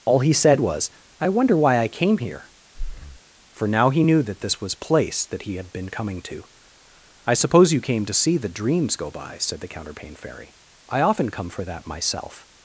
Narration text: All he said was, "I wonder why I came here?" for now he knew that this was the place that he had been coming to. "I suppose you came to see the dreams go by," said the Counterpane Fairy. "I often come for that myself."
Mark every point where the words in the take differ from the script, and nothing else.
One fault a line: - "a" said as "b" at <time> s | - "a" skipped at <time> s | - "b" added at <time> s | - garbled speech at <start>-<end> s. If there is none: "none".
- "the" skipped at 4.7 s